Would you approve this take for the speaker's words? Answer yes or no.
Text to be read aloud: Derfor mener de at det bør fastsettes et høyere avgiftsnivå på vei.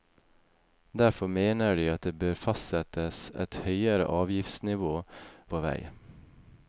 yes